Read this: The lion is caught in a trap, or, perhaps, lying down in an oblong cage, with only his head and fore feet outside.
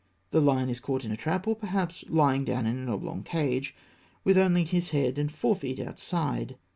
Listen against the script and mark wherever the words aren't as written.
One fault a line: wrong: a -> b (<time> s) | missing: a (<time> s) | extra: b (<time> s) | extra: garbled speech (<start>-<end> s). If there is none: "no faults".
no faults